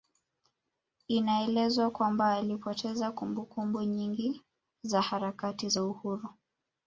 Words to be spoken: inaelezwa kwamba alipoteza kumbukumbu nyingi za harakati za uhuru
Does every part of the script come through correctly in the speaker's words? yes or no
yes